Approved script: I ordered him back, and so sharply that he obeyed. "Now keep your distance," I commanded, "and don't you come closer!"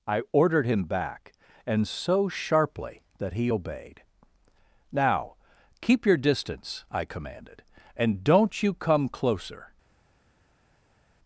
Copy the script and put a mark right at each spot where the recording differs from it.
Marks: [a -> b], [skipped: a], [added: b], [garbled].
I ordered him back, and so sharply that he obeyed. "Now keep your distance," I commanded, "and don't you come closer!"